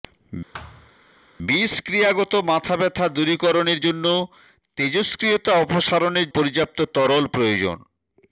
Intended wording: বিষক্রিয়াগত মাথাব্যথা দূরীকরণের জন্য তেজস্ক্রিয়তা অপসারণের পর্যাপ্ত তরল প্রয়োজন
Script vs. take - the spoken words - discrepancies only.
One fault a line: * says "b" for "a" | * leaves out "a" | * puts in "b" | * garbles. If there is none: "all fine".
all fine